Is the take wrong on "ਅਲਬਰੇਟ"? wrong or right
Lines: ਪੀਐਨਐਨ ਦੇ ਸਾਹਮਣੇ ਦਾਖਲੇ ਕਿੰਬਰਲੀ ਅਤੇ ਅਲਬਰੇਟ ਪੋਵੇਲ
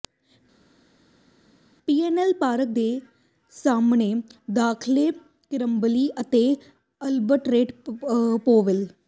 right